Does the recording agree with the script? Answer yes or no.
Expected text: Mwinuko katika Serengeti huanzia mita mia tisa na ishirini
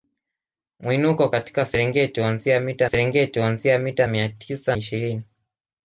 no